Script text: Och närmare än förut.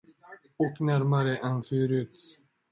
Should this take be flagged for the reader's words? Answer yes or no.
no